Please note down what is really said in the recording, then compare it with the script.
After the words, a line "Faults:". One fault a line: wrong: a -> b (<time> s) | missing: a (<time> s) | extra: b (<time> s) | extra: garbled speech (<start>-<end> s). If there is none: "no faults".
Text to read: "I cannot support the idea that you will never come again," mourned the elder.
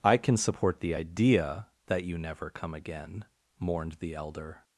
"I can support the idea that you never come again," mourned the elder.
Faults:
wrong: cannot -> can (0.2 s)
missing: will (2.2 s)